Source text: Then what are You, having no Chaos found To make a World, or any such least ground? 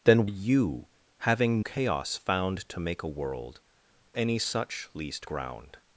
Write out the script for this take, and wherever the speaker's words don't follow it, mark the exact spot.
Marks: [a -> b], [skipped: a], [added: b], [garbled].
Then [skipped: what are] You, having [skipped: no] Chaos found To make a World, [skipped: or] any such least ground?